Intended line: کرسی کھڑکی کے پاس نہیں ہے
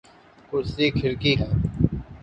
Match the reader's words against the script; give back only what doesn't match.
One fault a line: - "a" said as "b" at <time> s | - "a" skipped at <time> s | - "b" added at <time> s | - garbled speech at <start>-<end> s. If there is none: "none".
- "کے پاس نہیں" skipped at 1.3 s